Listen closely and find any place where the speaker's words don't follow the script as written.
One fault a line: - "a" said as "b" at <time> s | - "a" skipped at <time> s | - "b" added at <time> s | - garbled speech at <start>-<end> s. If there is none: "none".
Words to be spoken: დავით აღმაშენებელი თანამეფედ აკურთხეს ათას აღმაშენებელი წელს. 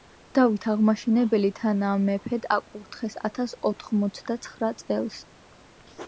- "აღმაშენებელი" said as "ოთხმოცდაცხრა" at 3.7 s